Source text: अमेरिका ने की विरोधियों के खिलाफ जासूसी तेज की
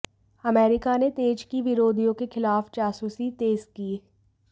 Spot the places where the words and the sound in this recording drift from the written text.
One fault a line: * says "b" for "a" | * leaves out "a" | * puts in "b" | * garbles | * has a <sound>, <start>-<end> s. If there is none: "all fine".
* puts in "तेज"